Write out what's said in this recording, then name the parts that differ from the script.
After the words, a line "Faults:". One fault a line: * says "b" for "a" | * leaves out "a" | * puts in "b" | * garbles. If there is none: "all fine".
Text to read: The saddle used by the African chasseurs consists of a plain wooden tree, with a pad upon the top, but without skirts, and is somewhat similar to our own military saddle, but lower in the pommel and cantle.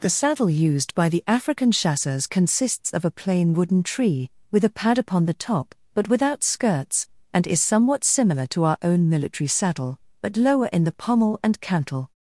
The saddle used by the African chasseurs consists of a plain wooden tree, with a pad upon the top, but without skirts, and is somewhat similar to our own military saddle, but lower in the pommel and cantle.
Faults:
all fine